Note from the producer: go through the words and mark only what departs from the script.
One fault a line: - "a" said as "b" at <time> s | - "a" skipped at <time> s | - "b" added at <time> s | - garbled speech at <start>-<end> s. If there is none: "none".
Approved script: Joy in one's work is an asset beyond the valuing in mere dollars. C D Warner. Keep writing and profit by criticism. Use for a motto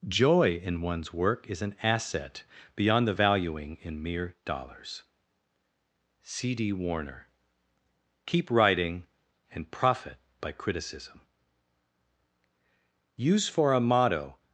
none